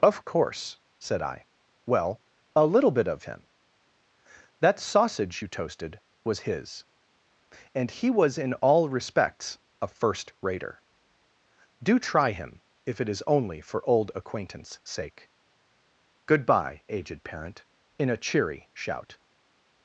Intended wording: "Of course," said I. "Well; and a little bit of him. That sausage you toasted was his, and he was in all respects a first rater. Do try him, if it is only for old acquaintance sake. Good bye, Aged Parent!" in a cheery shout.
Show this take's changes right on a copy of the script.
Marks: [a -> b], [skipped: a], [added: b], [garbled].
"Of course," said I. "Well; [skipped: and] a little bit of him. That sausage you toasted was his, and he was in all respects a first rater. Do try him, if it is only for old acquaintance sake. Good bye, Aged Parent!" in a cheery shout.